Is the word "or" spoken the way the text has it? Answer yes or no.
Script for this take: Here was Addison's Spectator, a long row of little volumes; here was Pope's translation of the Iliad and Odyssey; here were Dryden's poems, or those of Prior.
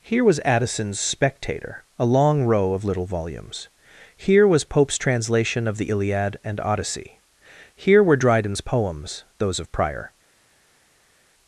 no